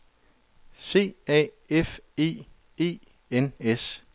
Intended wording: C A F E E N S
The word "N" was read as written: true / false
true